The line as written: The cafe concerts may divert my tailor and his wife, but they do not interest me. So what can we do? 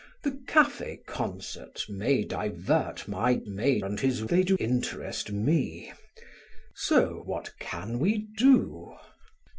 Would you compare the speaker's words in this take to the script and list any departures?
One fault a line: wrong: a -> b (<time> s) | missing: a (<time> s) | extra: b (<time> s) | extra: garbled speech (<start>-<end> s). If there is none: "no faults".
wrong: tailor -> may (3.4 s)
missing: wife but (4.2 s)
missing: not (4.6 s)